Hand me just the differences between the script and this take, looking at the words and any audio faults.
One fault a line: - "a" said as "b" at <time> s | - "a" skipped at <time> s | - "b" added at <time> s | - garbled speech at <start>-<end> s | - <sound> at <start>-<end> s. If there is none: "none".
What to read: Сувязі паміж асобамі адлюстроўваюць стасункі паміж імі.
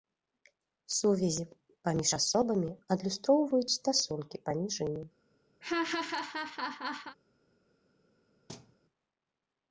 - laugh at 5.6-7.2 s
- thud at 8.5-8.8 s